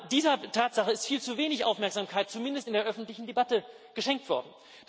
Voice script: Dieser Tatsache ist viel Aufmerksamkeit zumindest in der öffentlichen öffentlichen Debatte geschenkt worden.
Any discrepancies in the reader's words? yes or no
yes